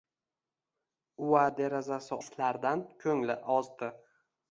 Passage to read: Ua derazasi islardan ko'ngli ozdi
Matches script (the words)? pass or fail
pass